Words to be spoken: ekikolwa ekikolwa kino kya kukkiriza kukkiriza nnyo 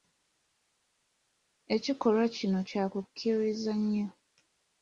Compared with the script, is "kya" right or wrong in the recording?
right